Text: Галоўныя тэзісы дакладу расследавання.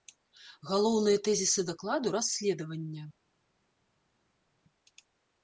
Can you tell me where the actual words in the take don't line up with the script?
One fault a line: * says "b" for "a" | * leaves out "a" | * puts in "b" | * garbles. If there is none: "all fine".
all fine